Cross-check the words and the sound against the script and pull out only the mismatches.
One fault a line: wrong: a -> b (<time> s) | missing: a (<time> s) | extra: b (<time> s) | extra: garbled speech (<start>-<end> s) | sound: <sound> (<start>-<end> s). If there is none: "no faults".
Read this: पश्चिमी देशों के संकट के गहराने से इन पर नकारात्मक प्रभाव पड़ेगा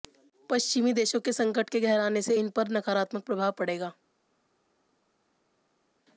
no faults